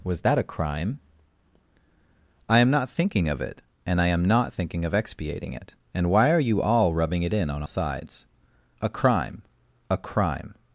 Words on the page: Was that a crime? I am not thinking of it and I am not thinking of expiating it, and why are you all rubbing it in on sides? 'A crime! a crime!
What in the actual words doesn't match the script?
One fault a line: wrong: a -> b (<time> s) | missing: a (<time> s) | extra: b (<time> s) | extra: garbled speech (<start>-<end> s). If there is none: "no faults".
no faults